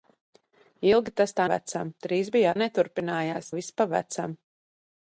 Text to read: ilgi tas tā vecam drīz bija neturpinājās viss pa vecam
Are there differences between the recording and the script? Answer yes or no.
no